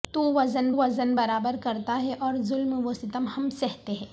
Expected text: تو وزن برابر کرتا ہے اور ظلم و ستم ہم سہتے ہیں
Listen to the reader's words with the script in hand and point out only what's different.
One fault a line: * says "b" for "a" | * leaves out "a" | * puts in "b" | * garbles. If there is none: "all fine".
* puts in "وزن"